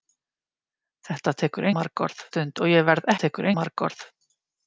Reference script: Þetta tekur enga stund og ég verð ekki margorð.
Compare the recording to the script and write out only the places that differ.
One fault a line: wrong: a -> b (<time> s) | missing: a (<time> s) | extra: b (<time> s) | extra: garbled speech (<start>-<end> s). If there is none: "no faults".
wrong: enga -> margorð (1.8 s)
wrong: ekki -> tekur (3.2 s)